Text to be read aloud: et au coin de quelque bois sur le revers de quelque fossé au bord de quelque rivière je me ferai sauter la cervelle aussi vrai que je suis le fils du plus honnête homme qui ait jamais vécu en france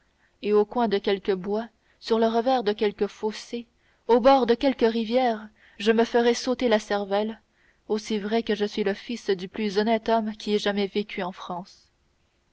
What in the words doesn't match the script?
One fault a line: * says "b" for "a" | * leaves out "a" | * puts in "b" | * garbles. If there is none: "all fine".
all fine